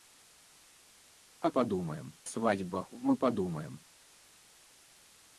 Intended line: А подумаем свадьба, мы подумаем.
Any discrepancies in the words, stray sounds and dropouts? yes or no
no